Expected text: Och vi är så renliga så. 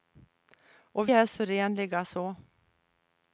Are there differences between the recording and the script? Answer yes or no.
yes